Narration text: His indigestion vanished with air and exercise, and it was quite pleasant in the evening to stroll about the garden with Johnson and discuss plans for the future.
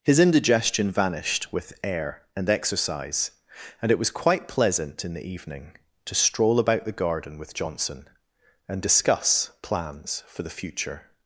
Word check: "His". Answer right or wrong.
right